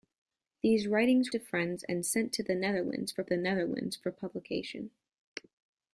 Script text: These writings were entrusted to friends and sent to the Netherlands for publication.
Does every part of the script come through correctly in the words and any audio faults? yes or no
no